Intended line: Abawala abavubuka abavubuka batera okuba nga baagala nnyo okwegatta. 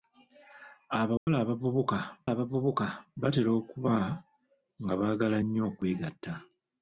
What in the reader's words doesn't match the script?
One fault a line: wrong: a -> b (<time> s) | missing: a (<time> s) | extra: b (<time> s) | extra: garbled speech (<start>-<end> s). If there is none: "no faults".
no faults